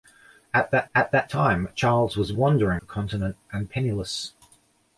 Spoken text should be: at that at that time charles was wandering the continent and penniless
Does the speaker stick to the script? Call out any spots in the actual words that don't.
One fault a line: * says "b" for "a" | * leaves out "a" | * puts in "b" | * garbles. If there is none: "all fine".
all fine